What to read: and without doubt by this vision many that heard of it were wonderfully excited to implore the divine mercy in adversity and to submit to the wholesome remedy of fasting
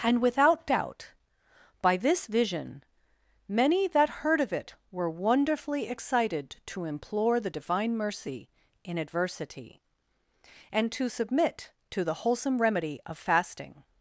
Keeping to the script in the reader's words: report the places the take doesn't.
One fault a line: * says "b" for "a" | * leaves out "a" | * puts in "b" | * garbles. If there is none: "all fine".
all fine